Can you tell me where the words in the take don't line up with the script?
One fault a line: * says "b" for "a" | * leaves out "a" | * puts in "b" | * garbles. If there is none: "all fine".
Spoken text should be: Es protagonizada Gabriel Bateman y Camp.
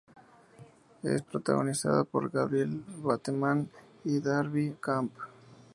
* puts in "por"
* puts in "Darby"